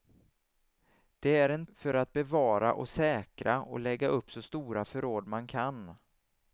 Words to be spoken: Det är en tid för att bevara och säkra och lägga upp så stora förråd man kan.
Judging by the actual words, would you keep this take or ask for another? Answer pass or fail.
fail